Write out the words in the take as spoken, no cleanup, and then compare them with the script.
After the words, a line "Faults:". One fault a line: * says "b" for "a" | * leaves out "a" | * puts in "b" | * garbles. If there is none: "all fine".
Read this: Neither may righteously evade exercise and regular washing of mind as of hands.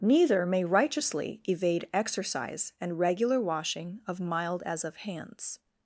Neither may righteously evade exercise and regular washing of mild as of hands.
Faults:
* says "mild" for "mind"